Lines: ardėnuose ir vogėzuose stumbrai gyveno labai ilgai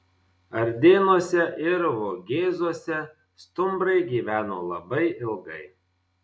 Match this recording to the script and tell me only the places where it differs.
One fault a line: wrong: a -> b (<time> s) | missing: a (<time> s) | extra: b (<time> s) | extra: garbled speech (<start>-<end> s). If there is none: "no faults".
no faults